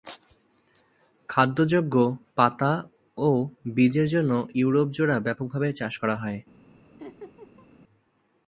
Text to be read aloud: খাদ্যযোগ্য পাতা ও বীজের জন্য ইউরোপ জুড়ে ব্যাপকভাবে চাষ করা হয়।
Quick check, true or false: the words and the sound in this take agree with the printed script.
false